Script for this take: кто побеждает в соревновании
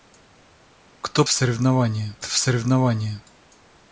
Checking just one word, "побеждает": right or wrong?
wrong